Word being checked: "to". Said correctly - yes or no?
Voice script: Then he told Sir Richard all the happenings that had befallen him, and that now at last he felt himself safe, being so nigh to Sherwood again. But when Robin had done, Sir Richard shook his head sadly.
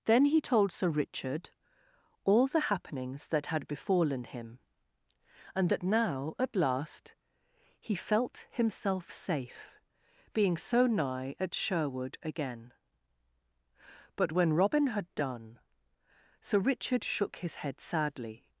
no